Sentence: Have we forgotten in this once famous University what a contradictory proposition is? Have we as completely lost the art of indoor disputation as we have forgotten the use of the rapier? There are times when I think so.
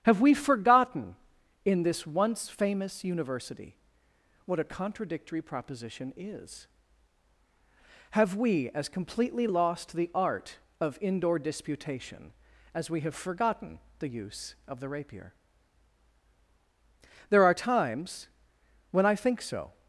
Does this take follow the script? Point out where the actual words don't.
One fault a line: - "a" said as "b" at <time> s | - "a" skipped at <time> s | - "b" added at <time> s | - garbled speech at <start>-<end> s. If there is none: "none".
none